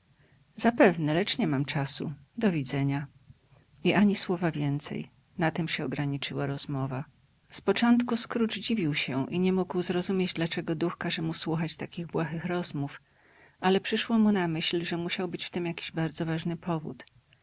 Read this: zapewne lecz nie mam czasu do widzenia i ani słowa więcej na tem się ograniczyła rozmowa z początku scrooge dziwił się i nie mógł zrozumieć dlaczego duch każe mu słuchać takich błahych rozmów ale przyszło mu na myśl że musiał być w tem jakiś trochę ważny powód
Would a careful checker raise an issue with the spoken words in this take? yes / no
yes